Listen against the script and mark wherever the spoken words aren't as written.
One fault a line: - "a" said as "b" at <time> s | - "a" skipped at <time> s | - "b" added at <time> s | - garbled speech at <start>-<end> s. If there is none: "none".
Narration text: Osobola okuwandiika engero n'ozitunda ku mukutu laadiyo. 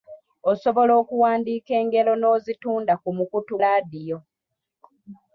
none